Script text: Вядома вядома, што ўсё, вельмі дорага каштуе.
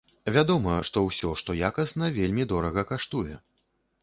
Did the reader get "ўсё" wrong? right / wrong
wrong